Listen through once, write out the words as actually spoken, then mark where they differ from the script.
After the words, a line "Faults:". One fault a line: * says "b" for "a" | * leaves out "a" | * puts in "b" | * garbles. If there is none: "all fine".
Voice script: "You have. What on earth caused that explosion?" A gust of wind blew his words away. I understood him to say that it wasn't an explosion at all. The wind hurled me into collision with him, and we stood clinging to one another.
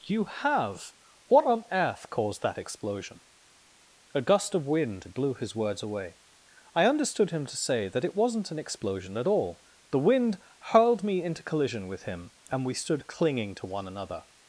"You have. What on earth caused that explosion?" A gust of wind blew his words away. I understood him to say that it wasn't an explosion at all. The wind hurled me into collision with him, and we stood clinging to one another.
Faults:
all fine